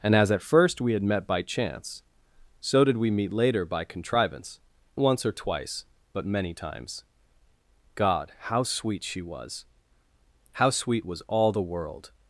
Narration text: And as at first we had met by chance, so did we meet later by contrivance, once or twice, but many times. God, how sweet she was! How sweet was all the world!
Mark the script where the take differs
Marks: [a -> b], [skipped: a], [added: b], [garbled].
And as at first we had met by chance, so did we meet later by contrivance, once or twice, but many times. God, how sweet she was! How sweet was all the world!